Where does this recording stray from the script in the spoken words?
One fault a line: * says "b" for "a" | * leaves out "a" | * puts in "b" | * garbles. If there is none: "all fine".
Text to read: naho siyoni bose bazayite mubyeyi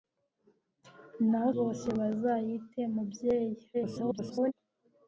* leaves out "siyoni"
* garbles